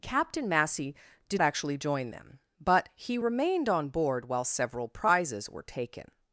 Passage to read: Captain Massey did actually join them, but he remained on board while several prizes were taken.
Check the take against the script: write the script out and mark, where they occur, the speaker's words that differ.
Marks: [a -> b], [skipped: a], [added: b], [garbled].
Captain Massey did actually join them, but he remained on board while several prizes were taken.